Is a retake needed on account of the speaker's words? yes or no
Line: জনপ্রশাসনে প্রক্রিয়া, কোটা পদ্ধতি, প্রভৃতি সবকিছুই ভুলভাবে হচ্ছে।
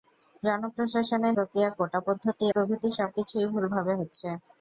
no